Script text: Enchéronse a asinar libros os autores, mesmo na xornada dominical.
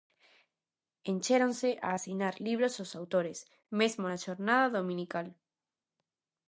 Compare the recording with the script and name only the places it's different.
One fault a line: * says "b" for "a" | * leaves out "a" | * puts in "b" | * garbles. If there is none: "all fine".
all fine